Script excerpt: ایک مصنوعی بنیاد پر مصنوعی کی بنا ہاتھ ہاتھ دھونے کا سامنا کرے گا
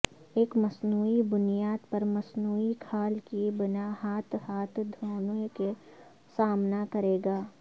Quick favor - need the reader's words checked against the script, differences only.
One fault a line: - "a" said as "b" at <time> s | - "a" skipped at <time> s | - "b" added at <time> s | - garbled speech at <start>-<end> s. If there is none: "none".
- "کھال" added at 2.8 s